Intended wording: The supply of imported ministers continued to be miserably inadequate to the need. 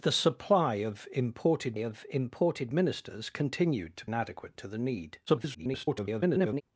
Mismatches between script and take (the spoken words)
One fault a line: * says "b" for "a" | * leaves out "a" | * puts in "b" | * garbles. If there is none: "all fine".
* puts in "of imported"
* leaves out "be miserably"
* garbles